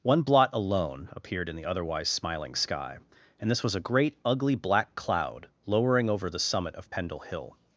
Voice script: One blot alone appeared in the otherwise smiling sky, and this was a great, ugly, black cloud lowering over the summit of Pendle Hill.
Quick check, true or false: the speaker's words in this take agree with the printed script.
true